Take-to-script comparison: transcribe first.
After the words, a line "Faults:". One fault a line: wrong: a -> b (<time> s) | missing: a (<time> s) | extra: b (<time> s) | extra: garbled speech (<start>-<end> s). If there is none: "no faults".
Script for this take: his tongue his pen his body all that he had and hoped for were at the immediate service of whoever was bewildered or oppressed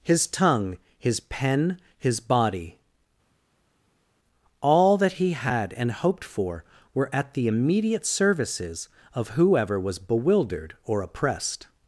his tongue his pen his body all that he had and hoped for were at the immediate services of whoever was bewildered or oppressed
Faults:
wrong: service -> services (8.0 s)